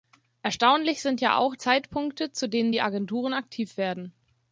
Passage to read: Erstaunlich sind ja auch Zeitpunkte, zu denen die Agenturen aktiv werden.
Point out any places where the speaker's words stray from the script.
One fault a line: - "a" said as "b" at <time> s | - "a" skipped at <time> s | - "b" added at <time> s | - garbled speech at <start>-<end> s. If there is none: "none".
none